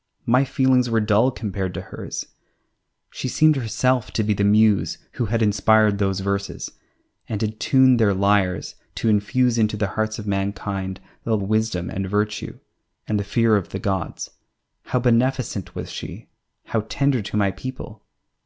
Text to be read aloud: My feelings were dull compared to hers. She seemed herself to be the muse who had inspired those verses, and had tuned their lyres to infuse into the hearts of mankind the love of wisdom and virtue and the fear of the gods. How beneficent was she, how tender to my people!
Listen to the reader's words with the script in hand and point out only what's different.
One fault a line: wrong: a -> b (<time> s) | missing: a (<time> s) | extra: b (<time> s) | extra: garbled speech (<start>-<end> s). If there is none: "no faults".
missing: love of (11.4 s)